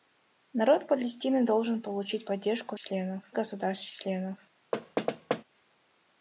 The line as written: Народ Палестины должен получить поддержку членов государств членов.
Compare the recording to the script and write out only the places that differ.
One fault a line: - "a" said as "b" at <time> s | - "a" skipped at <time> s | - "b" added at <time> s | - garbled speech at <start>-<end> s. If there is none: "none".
none